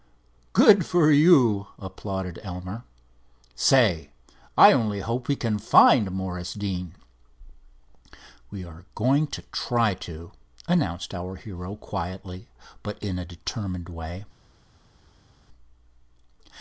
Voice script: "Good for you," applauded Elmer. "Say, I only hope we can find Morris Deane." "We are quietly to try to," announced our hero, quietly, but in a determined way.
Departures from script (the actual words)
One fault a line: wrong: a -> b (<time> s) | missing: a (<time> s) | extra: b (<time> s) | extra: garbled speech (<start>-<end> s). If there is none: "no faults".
wrong: quietly -> going (9.0 s)